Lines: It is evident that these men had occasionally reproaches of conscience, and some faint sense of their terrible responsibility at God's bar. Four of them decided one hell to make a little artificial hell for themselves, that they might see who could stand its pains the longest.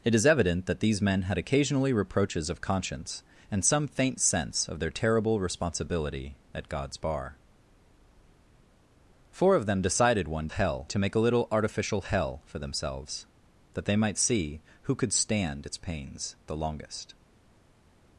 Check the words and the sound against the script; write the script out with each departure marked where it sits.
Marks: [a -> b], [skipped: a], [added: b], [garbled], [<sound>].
It is evident that these men had occasionally reproaches of conscience, and some faint sense of their terrible responsibility at God's bar. Four of them decided one hell to make a little artificial hell for themselves, that they might see who could stand its pains the longest.